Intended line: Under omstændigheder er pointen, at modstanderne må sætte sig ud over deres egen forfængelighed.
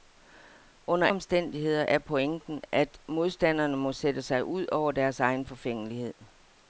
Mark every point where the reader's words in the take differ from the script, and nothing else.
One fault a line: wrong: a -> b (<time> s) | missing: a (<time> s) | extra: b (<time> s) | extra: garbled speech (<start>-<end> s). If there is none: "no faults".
no faults